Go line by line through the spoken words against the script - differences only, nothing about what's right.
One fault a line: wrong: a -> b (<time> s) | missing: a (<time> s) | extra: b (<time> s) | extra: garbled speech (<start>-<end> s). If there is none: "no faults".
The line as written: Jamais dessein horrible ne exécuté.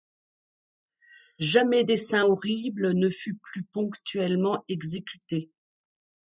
extra: fut plus ponctuellement (3.1 s)